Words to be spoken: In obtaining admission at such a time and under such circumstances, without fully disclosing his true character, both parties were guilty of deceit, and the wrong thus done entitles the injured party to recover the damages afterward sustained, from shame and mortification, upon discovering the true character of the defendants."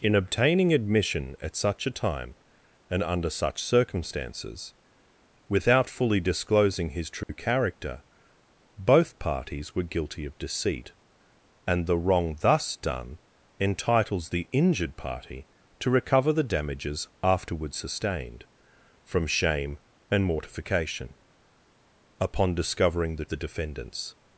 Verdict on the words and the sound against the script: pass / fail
fail